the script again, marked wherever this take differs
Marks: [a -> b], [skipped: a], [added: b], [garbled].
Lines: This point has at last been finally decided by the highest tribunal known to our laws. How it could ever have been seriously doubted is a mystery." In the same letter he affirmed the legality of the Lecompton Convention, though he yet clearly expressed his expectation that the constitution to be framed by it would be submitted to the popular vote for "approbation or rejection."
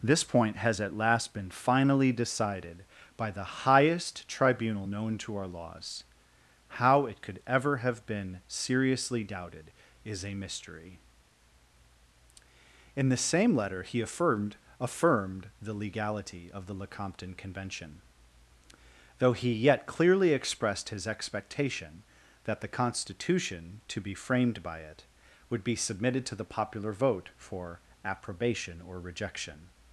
This point has at last been finally decided by the highest tribunal known to our laws. How it could ever have been seriously doubted is a mystery." In the same letter he affirmed [added: affirmed] the legality of the Lecompton Convention, though he yet clearly expressed his expectation that the constitution to be framed by it would be submitted to the popular vote for "approbation or rejection."